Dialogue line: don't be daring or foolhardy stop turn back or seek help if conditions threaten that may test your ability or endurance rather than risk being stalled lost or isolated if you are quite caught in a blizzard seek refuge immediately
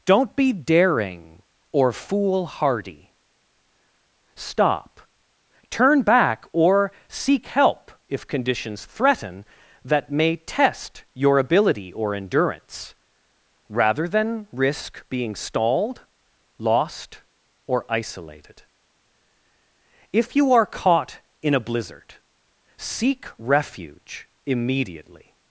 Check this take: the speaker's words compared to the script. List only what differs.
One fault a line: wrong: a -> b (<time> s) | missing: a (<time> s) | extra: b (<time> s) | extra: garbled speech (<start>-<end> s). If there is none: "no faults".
missing: quite (20.6 s)